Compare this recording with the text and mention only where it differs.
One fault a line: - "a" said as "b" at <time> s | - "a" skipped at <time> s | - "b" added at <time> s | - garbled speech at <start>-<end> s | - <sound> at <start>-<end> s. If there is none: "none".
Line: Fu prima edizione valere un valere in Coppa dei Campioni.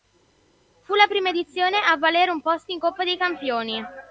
- "la" added at 0.9 s
- "a" added at 1.8 s
- "valere" said as "posto" at 2.4 s